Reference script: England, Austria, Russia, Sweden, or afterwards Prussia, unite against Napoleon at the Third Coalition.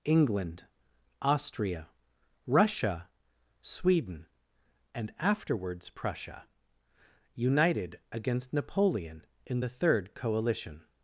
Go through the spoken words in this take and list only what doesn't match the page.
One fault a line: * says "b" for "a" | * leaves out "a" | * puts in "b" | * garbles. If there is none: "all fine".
* says "and" for "or"
* says "united" for "unite"
* says "in" for "at"